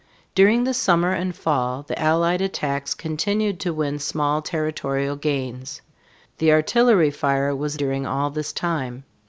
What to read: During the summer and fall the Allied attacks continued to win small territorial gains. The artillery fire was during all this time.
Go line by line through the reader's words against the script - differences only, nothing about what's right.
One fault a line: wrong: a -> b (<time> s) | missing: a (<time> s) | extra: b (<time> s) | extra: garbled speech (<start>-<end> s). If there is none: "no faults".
no faults